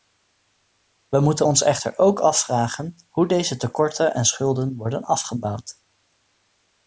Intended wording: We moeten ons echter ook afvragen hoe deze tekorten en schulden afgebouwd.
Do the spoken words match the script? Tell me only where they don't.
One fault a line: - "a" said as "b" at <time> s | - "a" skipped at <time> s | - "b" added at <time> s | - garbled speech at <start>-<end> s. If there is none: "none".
- "worden" added at 4.7 s